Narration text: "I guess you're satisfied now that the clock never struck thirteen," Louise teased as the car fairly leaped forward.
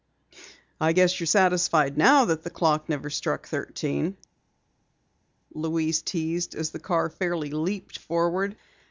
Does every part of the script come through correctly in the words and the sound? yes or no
yes